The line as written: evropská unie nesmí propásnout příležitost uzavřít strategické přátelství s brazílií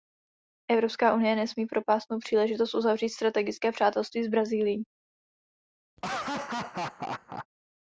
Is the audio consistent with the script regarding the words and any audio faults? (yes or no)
no